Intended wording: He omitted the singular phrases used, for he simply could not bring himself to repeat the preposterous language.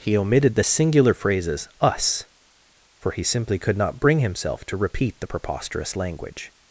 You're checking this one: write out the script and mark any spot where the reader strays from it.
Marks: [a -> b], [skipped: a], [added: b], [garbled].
He omitted the singular phrases [used, -> us] for he simply could not bring himself to repeat the preposterous language.